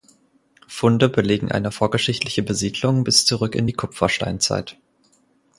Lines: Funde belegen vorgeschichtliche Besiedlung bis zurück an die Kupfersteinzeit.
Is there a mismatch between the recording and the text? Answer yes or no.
yes